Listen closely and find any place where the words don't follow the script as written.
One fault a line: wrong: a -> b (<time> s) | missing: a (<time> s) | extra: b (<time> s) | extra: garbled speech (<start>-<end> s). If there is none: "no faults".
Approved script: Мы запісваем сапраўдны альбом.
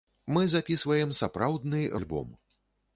no faults